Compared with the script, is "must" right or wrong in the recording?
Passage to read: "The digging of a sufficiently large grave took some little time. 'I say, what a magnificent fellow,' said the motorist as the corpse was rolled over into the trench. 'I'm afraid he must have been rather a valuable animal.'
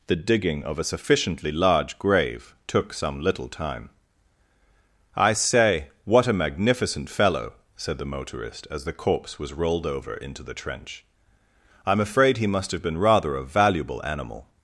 right